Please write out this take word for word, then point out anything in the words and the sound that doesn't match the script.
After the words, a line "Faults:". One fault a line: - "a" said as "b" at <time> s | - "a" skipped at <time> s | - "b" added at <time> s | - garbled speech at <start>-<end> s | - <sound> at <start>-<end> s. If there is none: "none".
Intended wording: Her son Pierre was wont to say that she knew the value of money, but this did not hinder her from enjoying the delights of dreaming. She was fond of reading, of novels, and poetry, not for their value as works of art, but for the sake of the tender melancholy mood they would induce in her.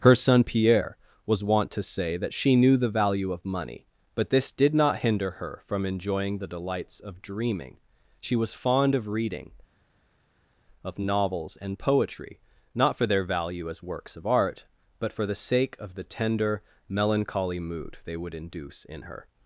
Her son Pierre was wont to say that she knew the value of money, but this did not hinder her from enjoying the delights of dreaming. She was fond of reading, of novels, and poetry, not for their value as works of art, but for the sake of the tender melancholy mood they would induce in her.
Faults:
none